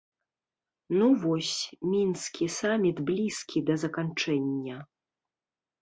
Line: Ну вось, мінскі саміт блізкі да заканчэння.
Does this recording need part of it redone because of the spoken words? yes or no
no